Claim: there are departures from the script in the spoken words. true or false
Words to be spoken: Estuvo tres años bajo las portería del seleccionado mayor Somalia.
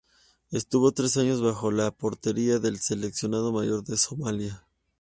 true